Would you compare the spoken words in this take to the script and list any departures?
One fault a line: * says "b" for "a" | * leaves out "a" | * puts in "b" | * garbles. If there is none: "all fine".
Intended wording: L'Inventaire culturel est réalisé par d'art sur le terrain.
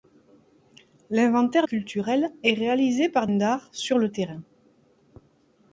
all fine